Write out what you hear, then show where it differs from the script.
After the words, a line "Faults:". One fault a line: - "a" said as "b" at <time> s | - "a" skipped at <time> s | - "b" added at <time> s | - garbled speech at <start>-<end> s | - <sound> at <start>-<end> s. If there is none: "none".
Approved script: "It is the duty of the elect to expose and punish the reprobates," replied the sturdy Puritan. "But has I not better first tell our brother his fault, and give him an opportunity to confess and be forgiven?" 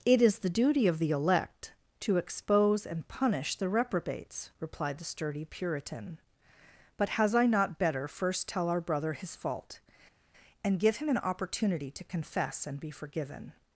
"It is the duty of the elect to expose and punish the reprobates," replied the sturdy Puritan. "But has I not better first tell our brother his fault, and give him an opportunity to confess and be forgiven?"
Faults:
none